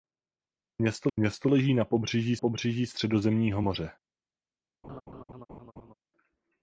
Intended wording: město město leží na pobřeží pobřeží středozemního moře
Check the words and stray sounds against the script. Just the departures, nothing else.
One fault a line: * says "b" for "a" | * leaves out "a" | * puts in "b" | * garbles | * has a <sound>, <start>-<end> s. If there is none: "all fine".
* has a laugh, 4.8-5.9 s